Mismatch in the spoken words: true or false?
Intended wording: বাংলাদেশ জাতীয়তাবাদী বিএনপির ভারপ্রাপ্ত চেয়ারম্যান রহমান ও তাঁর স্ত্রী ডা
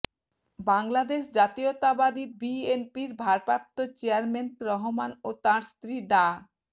false